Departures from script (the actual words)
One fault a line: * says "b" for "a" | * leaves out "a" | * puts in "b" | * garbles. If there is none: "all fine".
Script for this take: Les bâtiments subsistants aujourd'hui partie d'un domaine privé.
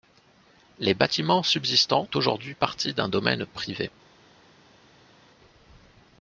all fine